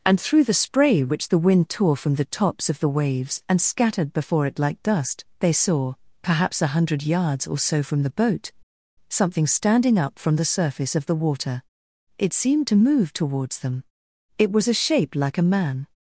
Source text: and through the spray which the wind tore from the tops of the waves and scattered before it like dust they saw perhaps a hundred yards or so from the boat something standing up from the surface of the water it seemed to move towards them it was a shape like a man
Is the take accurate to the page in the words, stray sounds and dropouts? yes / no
yes